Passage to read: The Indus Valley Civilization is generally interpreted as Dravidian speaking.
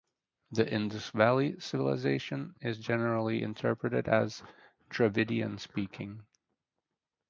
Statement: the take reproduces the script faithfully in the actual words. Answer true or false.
true